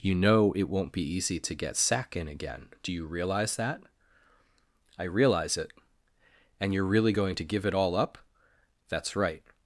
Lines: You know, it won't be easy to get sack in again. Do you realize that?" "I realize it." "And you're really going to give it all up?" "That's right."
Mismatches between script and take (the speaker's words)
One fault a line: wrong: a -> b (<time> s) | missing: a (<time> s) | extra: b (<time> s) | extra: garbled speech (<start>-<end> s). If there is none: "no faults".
no faults